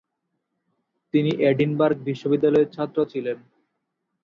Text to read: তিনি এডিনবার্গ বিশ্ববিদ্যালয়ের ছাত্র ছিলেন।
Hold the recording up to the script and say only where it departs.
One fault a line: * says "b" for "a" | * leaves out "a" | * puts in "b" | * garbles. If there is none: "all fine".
all fine